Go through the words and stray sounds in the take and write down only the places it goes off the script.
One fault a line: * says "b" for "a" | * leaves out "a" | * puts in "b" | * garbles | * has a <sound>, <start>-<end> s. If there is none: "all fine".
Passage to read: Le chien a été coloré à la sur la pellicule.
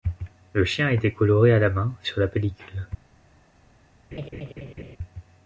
* puts in "main"
* has a laugh, 4.1-5.0 s